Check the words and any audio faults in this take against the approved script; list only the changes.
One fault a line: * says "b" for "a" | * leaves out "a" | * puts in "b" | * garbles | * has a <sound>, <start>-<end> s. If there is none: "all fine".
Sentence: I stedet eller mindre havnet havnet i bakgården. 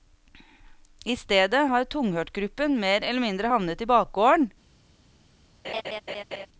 * puts in "har tunghørtgruppen mer"
* leaves out "havnet"
* has a laugh, 5.6-6.5 s